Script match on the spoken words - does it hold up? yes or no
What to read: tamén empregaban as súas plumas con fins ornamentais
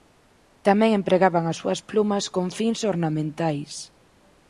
yes